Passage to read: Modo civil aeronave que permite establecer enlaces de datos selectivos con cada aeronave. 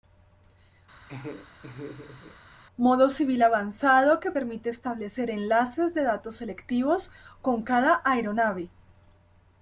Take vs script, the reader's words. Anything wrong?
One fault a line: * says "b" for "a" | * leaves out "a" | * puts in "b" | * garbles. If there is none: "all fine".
* says "avanzado" for "aeronave"